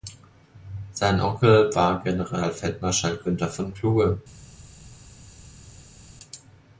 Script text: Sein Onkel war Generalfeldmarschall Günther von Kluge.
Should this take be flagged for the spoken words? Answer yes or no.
no